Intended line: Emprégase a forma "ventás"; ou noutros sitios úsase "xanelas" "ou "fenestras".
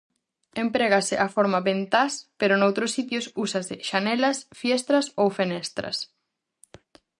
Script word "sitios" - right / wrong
right